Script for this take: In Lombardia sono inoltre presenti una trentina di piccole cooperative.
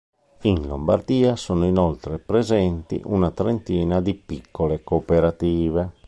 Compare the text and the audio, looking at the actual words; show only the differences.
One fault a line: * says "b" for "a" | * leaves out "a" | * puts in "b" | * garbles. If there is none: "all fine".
all fine